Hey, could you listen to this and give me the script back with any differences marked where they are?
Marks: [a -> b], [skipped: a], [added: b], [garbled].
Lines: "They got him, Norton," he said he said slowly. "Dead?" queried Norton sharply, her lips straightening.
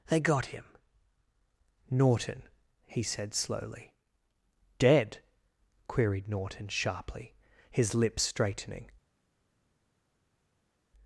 "They got him, Norton," he said [skipped: he said] slowly. "Dead?" queried Norton sharply, [her -> his] lips straightening.